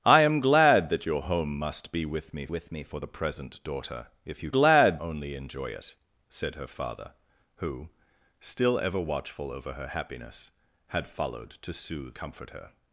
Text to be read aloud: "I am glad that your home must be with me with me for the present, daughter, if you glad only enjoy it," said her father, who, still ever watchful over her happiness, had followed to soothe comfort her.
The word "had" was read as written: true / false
true